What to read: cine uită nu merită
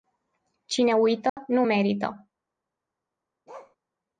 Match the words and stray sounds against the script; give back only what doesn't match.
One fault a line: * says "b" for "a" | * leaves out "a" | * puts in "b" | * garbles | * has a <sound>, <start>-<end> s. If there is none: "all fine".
* has a dropout, 1.3-1.4 s
* has a bark, 3.5-3.8 s